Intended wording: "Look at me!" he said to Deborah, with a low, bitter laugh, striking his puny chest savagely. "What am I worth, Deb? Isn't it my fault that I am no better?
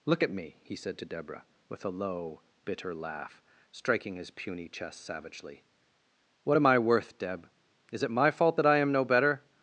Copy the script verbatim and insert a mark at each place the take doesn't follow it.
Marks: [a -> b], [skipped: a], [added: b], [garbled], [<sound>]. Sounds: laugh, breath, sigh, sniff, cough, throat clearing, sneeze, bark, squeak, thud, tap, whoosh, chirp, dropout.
"Look at me!" he said to Deborah, with a low, bitter laugh, striking his puny chest savagely. "What am I worth, Deb? [Isn't -> Is] it my fault that I am no better?